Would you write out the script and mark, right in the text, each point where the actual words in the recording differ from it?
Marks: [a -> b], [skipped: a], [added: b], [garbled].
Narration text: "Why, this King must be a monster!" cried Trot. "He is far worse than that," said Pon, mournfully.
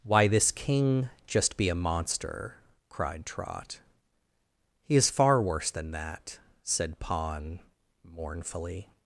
"Why, this King [must -> just] be a monster!" cried Trot. "He is far worse than that," said Pon, mournfully.